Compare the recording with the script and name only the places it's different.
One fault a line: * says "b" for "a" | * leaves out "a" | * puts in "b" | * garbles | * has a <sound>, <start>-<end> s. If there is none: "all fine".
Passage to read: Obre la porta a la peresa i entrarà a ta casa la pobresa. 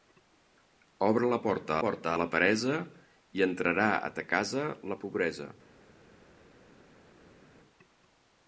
* puts in "porta"